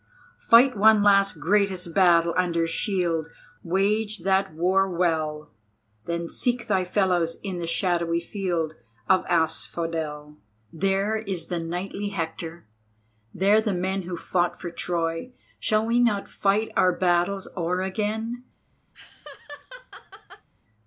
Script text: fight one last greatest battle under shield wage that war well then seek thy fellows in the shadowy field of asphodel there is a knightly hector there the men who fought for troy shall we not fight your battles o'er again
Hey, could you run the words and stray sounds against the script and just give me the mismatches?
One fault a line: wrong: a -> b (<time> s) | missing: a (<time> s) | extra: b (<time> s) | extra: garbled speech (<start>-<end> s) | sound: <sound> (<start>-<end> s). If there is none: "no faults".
wrong: a -> the (11.5 s)
wrong: your -> our (16.8 s)
sound: laugh (18.9-20.5 s)